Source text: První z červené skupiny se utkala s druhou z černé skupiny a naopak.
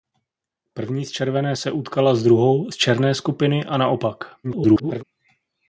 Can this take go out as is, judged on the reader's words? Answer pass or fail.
fail